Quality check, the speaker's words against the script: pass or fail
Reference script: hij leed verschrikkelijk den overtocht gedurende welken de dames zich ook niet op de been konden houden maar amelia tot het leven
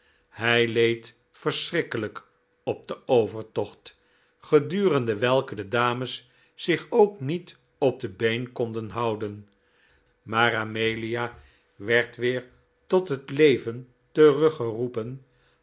fail